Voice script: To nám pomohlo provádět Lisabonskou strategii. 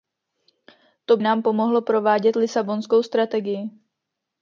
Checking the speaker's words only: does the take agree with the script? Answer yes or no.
yes